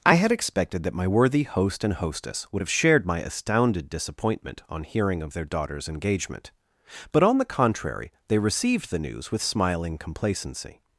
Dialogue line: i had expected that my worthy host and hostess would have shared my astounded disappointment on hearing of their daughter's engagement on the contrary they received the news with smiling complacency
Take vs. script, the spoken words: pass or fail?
fail